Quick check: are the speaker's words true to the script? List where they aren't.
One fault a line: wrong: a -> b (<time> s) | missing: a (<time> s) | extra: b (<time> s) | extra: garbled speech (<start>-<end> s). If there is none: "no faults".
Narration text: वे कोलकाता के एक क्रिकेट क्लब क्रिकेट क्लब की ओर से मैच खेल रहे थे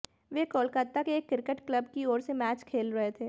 missing: क्रिकेट क्लब (1.9 s)